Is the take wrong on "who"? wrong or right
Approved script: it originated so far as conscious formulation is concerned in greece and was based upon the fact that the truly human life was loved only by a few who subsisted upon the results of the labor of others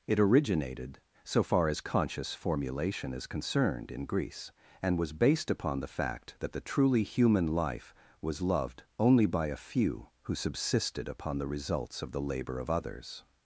right